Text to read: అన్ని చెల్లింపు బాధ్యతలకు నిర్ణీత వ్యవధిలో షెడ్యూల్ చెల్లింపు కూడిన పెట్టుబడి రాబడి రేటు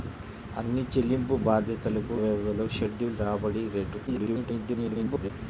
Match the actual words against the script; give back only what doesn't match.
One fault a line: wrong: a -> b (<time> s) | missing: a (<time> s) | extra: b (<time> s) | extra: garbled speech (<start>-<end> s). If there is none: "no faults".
missing: నిర్ణీత (2.1 s)
missing: చెల్లింపు కూడిన పెట్టుబడి (3.2 s)
extra: garbled speech (4.1-5.3 s)